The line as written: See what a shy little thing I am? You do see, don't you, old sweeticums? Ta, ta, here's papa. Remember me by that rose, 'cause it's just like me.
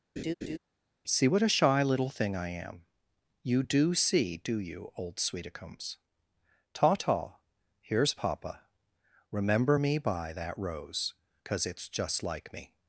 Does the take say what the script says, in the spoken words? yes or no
no